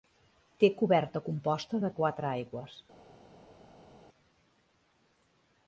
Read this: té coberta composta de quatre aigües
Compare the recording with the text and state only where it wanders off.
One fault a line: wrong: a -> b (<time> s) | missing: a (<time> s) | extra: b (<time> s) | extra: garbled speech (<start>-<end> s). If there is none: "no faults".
no faults